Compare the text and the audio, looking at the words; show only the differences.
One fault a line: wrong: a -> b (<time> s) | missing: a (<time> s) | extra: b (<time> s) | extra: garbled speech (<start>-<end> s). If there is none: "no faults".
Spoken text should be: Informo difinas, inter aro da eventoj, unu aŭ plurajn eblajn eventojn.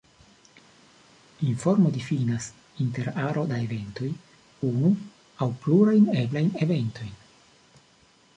no faults